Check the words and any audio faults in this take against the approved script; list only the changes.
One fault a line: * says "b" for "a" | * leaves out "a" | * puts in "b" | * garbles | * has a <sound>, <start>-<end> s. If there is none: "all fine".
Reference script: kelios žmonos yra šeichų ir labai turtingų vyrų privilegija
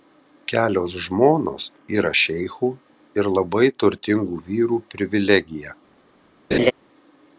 * has a laugh, 6.5-6.7 s